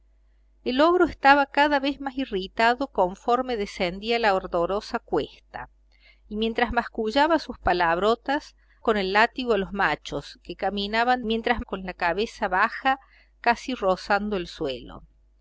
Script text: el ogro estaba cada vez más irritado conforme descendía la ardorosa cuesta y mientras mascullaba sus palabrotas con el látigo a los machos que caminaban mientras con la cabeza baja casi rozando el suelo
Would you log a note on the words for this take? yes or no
no